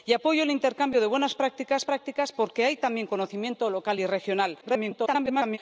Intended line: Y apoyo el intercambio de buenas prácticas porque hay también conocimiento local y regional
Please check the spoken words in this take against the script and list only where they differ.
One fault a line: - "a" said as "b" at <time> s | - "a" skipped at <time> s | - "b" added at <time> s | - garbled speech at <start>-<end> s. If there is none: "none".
- "prácticas" added at 1.8 s
- garbled speech at 4.6-5.6 s